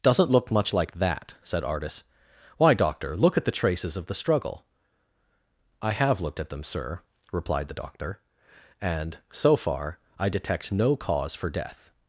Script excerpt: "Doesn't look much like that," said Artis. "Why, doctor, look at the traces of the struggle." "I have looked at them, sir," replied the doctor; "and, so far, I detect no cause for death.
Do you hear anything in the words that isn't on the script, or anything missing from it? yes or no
no